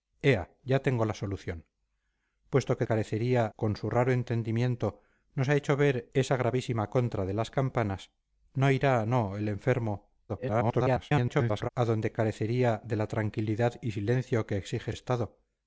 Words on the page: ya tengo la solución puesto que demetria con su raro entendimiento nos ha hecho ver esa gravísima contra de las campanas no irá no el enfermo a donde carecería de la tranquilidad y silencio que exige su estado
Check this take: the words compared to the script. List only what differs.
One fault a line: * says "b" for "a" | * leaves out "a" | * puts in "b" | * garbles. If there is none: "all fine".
* says "carecería" for "demetria"
* garbles
* leaves out "su"